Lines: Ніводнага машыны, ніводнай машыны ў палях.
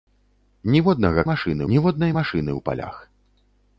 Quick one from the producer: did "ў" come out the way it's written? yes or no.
yes